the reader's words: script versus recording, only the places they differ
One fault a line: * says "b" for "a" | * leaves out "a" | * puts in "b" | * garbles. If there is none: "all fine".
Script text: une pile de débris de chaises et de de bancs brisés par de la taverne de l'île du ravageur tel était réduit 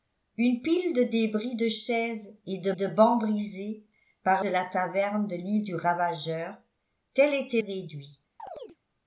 all fine